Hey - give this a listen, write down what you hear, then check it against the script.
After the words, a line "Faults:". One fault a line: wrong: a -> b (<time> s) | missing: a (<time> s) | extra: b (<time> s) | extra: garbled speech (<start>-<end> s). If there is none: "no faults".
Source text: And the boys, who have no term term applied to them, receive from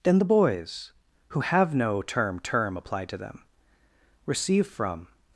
Then the boys, who have no term term applied to them, receive from
Faults:
wrong: And -> Then (0.0 s)